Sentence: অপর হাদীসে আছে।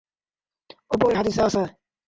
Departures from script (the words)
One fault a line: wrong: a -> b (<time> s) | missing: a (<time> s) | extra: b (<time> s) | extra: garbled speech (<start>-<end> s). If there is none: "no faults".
no faults